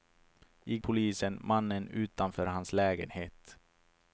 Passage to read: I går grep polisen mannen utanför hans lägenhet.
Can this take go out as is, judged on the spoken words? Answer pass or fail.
fail